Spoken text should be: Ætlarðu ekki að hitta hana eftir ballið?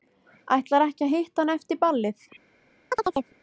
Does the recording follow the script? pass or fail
pass